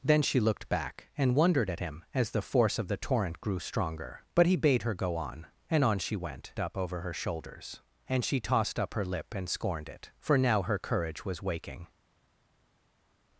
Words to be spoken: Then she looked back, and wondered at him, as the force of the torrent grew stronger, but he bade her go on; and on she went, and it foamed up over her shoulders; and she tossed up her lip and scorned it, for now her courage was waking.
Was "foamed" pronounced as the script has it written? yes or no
no